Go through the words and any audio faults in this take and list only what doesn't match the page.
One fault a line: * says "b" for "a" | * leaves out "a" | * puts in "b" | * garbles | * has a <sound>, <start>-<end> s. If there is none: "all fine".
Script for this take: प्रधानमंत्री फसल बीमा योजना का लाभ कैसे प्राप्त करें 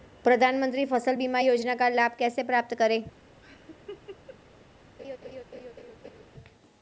* has a laugh, 3.4-4.4 s
* has a laugh, 5.0-6.2 s